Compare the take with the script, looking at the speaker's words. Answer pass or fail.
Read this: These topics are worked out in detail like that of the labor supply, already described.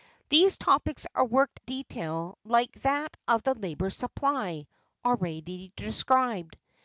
fail